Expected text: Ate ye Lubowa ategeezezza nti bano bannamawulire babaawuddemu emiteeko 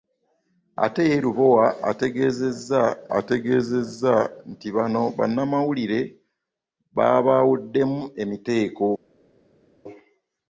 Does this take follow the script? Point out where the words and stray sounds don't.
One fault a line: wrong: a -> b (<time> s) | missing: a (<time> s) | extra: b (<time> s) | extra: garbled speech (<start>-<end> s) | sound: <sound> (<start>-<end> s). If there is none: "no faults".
extra: ategeezezza (3.2 s)